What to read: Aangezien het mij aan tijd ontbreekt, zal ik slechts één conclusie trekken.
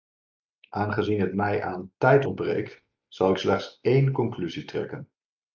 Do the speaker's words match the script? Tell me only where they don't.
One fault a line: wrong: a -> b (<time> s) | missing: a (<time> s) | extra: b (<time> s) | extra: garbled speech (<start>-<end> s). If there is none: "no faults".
no faults